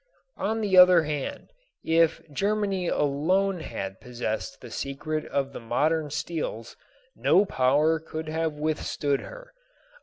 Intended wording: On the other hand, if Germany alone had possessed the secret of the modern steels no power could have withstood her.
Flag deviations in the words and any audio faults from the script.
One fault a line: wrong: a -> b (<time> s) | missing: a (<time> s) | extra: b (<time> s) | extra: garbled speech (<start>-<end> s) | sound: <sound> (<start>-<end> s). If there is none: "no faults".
no faults